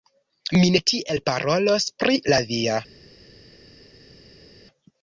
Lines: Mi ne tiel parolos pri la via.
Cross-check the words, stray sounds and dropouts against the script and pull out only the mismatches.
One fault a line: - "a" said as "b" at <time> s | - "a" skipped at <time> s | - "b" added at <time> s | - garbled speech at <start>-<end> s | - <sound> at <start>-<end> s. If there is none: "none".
none